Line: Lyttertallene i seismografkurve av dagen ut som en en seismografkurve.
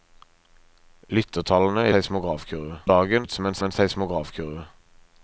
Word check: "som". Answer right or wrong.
right